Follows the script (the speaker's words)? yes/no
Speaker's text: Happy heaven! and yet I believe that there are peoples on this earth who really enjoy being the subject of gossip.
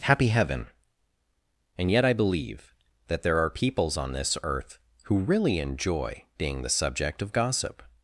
yes